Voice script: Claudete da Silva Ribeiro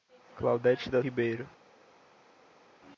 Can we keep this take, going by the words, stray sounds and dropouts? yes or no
no